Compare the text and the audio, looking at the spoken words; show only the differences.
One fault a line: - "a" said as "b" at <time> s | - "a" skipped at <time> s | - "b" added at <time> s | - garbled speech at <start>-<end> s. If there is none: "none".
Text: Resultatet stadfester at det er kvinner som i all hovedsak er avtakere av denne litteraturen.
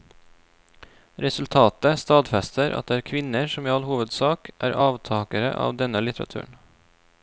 none